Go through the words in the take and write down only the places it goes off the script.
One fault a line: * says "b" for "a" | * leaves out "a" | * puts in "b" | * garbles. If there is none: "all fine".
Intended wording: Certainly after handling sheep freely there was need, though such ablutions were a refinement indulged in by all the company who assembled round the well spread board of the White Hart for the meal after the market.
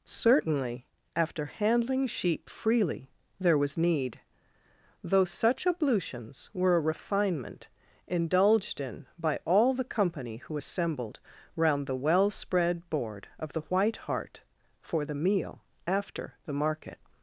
all fine